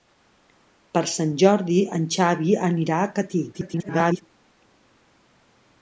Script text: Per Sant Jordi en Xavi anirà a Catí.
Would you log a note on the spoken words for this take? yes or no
yes